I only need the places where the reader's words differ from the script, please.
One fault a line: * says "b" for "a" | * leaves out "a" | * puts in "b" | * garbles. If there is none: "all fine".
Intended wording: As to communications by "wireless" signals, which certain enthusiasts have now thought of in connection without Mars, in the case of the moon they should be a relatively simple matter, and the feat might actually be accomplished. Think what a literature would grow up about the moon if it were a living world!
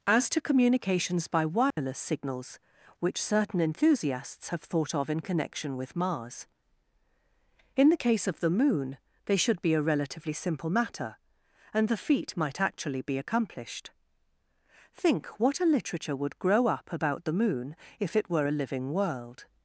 * leaves out "now"
* says "with" for "without"